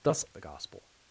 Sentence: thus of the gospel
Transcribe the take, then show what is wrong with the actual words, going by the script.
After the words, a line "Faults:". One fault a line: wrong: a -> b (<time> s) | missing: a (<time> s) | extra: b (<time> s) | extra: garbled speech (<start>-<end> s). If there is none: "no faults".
thus of the gospel
Faults:
no faults